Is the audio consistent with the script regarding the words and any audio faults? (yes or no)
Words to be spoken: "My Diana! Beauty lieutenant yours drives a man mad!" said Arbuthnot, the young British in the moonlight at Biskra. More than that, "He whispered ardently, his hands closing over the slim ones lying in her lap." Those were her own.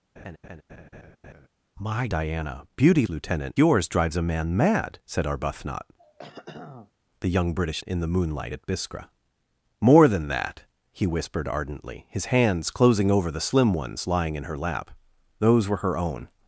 no